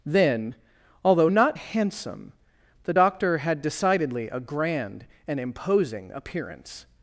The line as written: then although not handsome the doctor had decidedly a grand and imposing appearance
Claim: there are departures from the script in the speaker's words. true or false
false